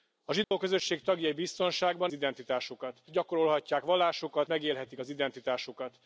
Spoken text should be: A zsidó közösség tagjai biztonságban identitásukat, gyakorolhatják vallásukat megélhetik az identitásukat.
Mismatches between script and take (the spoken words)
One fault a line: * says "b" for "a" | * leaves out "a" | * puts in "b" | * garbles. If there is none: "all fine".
all fine